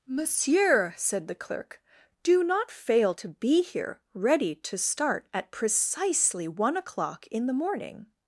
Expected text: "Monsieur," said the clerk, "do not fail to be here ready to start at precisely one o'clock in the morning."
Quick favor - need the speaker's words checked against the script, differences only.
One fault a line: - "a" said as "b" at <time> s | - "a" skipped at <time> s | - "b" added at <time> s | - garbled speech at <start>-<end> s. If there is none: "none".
none